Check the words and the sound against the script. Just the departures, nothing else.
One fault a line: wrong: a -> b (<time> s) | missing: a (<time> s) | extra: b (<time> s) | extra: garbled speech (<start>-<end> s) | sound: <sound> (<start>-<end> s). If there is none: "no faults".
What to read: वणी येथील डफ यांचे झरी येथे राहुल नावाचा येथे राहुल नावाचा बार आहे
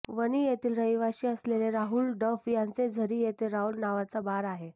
extra: रहिवाशी असलेले राहुल (0.7 s)
missing: येथे राहुल नावाचा (4.2 s)